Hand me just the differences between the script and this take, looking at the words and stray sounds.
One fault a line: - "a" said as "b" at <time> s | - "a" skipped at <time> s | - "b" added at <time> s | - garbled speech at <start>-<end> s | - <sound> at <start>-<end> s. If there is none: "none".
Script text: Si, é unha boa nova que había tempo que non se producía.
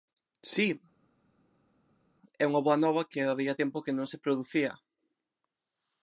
none